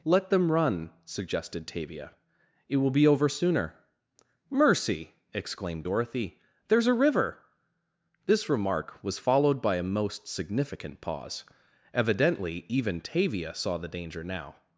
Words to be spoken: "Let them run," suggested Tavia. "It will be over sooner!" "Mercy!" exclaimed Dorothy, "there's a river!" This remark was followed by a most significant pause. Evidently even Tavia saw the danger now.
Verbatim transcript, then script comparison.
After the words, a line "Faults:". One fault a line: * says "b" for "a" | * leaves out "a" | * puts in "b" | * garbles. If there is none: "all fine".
"Let them run," suggested Tavia. "It will be over sooner!" "Mercy!" exclaimed Dorothy, "there's a river!" This remark was followed by a most significant pause. Evidently even Tavia saw the danger now.
Faults:
all fine